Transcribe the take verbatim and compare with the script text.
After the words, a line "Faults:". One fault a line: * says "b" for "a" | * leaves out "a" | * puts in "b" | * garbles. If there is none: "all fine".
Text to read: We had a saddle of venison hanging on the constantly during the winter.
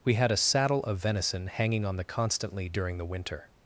We had a saddle of venison hanging on the constantly during the winter.
Faults:
all fine